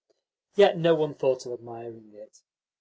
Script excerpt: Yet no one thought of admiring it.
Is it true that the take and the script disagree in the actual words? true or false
false